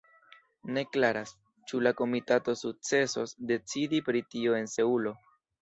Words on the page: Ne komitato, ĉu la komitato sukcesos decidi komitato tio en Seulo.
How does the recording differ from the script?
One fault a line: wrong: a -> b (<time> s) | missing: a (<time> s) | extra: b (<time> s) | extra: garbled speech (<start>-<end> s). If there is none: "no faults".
wrong: komitato -> klaras (0.9 s)
wrong: komitato -> pri (4.1 s)